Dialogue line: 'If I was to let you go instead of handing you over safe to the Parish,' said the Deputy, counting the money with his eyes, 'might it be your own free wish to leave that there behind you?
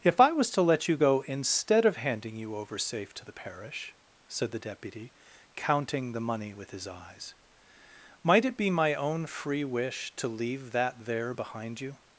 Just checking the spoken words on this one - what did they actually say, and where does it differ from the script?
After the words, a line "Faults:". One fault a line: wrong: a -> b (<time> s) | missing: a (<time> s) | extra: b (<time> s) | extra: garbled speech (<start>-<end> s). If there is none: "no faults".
'If I was to let you go instead of handing you over safe to the Parish,' said the Deputy, counting the money with his eyes, 'might it be my own free wish to leave that there behind you?
Faults:
wrong: your -> my (8.7 s)